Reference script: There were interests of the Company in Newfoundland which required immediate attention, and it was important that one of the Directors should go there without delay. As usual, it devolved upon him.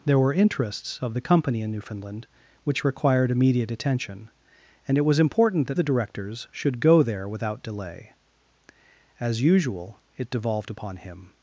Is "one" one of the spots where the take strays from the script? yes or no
yes